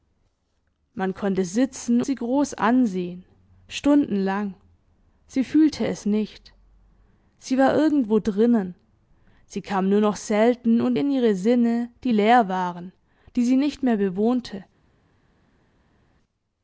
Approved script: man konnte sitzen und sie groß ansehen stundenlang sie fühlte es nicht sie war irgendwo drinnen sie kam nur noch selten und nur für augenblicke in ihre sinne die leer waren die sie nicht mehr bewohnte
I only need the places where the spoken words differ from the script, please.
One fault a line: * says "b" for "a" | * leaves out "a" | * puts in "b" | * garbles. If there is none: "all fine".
* leaves out "und"
* leaves out "nur für augenblicke"